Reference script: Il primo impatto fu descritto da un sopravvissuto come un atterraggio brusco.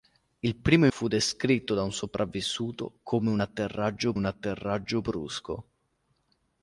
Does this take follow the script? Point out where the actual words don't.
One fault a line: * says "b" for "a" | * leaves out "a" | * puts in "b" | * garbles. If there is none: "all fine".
* leaves out "impatto"
* puts in "un atterraggio"